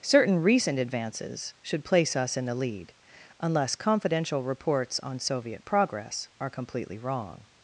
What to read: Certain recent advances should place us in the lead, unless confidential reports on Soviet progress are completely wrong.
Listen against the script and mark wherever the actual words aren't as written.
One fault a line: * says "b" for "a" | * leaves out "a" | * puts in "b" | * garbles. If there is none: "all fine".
all fine